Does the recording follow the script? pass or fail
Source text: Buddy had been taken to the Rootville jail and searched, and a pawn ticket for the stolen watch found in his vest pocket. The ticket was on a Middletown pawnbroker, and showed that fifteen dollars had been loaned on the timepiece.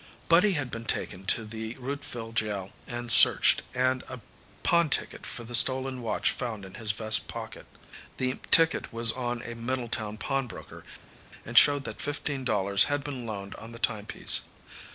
pass